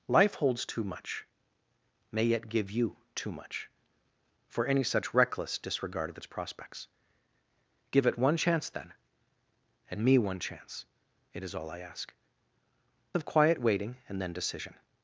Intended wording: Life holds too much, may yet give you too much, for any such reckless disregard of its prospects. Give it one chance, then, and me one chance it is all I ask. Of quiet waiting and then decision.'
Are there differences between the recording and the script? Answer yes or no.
no